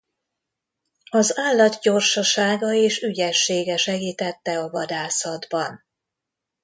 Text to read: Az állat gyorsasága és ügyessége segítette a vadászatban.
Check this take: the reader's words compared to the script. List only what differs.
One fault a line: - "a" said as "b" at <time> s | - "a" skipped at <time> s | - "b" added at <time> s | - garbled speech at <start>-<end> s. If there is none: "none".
none